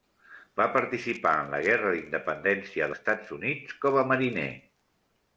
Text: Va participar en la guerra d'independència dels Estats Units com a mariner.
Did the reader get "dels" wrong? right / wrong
wrong